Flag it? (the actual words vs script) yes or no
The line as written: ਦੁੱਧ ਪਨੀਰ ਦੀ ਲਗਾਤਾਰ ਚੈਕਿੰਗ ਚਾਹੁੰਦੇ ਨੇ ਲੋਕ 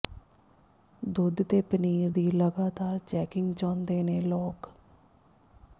yes